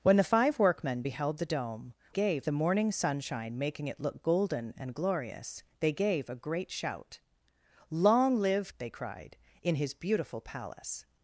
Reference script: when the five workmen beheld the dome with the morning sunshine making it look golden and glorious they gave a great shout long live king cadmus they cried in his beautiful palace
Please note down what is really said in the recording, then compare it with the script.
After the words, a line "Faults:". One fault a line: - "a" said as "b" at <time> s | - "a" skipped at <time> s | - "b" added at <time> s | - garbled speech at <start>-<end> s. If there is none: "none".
when the five workmen beheld the dome gave the morning sunshine making it look golden and glorious they gave a great shout long live they cried in his beautiful palace
Faults:
- "with" said as "gave" at 2.1 s
- "king cadmus" skipped at 8.7 s